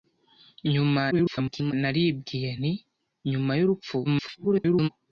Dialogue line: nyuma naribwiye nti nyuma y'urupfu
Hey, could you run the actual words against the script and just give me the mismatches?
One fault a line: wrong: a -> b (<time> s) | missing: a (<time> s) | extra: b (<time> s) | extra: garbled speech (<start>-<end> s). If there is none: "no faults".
extra: garbled speech (1.1-1.7 s)
extra: garbled speech (4.0-4.9 s)